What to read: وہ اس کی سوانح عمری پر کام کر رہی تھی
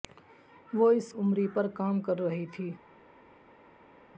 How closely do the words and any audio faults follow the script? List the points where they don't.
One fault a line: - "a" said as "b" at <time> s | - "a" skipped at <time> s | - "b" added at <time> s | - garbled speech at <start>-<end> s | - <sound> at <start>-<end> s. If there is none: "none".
- "کی سوانح" skipped at 1.1 s